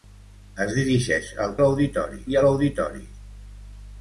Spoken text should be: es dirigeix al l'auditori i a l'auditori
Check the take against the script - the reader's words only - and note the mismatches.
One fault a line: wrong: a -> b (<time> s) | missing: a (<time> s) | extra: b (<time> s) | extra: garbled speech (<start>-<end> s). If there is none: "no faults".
no faults